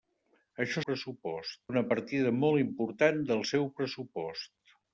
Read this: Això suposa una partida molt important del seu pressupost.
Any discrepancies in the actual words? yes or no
yes